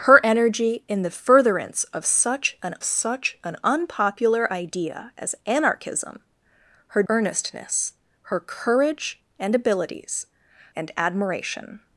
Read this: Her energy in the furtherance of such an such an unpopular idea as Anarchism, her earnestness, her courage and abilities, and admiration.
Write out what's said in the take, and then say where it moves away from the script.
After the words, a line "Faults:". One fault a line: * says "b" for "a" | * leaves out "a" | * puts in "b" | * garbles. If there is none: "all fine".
Her energy in the furtherance of such an such an unpopular idea as Anarchism, her earnestness, her courage and abilities, and admiration.
Faults:
all fine